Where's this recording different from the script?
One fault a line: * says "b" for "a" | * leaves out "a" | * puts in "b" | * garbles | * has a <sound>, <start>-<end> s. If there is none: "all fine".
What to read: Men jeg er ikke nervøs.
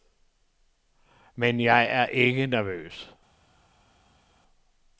all fine